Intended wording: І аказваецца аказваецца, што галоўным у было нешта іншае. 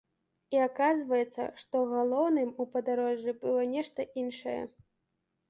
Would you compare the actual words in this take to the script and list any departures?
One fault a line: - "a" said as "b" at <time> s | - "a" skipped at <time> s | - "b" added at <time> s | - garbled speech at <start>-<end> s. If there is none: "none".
- "аказваецца" skipped at 1.4 s
- "падарожжы" added at 2.8 s